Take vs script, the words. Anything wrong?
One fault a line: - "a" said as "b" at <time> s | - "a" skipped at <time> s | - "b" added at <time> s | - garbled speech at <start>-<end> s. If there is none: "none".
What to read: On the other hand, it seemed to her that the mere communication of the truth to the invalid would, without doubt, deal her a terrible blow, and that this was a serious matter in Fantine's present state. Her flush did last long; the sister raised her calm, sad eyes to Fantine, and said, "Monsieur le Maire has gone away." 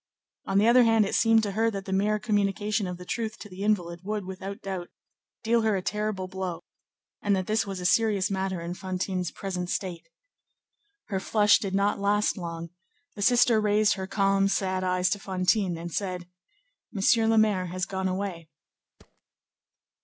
- "not" added at 11.8 s